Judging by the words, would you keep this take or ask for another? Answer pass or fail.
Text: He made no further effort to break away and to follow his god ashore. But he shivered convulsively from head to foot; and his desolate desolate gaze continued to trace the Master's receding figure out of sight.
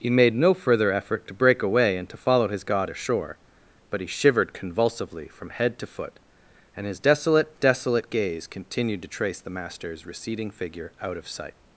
pass